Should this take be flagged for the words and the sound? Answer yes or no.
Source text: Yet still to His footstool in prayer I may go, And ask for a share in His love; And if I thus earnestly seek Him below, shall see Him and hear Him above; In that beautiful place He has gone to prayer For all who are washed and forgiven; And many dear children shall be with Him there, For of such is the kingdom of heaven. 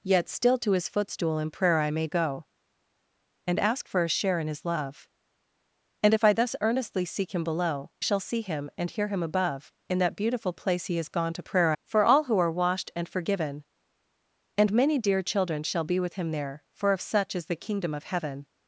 no